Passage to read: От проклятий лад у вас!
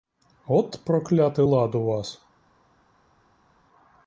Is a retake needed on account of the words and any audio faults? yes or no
no